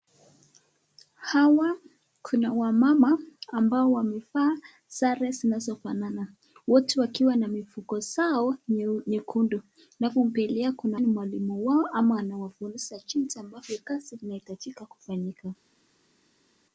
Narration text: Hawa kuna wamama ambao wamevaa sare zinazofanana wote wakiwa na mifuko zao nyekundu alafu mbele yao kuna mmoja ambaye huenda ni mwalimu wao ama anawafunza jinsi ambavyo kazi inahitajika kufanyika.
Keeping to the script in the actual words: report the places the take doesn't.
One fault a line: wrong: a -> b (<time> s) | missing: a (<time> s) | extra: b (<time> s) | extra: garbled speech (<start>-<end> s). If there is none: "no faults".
missing: mmoja ambaye huenda (11.0 s)